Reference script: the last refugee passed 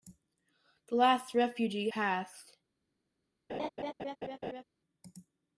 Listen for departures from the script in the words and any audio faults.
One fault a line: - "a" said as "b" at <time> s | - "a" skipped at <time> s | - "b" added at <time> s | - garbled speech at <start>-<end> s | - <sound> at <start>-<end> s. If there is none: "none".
- laugh at 3.5-4.6 s